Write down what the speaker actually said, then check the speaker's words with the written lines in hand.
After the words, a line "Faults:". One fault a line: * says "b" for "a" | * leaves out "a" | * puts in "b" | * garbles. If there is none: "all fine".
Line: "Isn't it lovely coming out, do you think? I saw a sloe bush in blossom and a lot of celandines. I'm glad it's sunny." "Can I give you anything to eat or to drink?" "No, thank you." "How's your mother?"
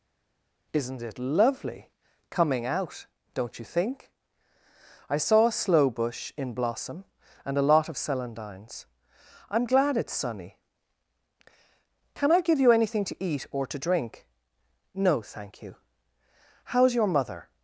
"Isn't it lovely coming out, don't you think? I saw a sloe bush in blossom and a lot of celandines. I'm glad it's sunny." "Can I give you anything to eat or to drink?" "No, thank you." "How's your mother?"
Faults:
* says "don't" for "do"